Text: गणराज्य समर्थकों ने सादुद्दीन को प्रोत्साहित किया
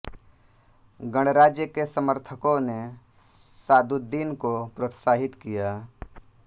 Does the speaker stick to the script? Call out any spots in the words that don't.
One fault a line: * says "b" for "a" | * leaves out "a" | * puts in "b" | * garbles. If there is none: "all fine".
* puts in "के"